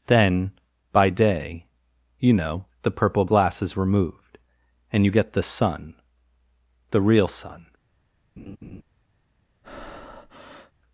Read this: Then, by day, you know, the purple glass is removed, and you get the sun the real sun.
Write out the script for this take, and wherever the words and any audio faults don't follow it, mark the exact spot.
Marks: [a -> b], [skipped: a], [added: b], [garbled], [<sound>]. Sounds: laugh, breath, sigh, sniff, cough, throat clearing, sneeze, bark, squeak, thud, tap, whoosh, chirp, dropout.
Then, by day, you know, the purple glass is removed, and you get the sun the real sun. [laugh] [breath]